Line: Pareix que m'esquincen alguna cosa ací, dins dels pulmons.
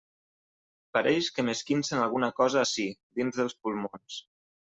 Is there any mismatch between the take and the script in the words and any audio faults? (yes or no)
no